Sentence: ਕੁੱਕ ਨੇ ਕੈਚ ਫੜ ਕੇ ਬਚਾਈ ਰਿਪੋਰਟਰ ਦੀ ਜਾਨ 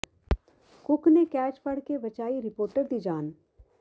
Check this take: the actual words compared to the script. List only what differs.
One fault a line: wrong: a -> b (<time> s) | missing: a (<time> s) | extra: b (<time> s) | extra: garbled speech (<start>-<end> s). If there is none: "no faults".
no faults